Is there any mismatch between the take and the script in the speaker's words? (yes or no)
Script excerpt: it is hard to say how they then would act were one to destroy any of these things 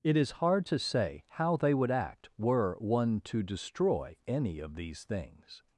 yes